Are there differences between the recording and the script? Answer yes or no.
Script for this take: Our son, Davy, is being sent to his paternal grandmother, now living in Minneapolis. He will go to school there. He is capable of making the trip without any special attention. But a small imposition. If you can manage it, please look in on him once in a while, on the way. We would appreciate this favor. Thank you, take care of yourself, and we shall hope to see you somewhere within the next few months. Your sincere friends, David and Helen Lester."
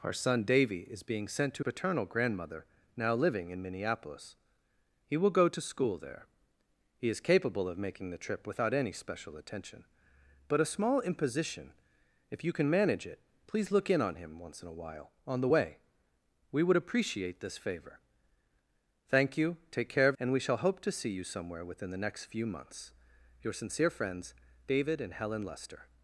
yes